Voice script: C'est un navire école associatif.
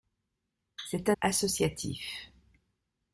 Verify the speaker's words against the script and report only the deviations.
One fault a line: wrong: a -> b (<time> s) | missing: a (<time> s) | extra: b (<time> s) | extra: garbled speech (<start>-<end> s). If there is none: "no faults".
missing: navire école (1.2 s)